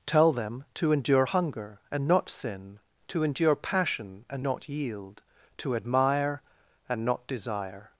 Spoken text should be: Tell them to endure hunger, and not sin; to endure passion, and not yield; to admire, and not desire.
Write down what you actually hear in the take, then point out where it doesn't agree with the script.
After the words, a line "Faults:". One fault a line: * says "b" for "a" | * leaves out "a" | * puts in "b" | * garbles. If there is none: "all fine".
Tell them to endure hunger, and not sin; to endure passion, and not yield; to admire, and not desire.
Faults:
all fine